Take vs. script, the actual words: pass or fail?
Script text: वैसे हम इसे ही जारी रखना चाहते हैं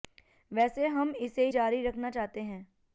fail